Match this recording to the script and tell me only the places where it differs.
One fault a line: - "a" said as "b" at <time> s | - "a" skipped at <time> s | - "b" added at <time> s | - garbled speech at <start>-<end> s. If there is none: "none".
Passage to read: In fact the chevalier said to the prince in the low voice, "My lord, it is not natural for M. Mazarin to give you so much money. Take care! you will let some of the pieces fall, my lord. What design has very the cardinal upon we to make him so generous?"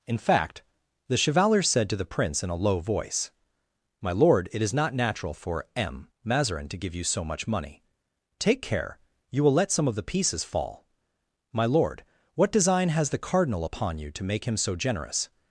- "the" said as "a" at 2.5 s
- "very" skipped at 13.1 s
- "we" said as "you" at 14.0 s